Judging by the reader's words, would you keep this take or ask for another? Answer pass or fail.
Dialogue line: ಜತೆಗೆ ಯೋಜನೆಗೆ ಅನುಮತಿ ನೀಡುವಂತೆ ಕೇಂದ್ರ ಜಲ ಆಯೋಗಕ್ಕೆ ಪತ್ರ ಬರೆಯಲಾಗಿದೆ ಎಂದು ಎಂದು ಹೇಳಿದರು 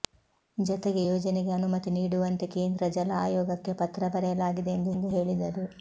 pass